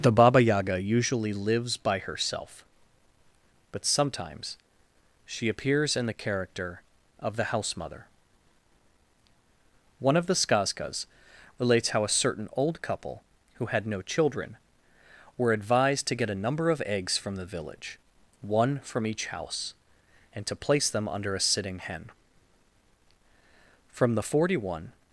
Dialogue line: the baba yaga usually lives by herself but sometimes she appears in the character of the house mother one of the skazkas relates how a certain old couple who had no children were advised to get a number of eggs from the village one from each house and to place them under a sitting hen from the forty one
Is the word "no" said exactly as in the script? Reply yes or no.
yes